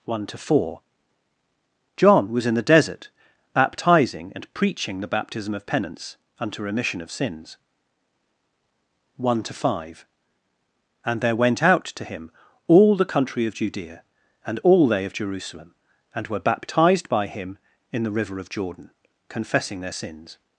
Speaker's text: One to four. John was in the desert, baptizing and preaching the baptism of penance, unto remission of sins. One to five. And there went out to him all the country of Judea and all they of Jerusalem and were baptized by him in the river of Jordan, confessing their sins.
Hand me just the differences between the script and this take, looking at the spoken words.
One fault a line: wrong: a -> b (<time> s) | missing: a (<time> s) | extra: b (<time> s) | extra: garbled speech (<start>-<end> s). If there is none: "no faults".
no faults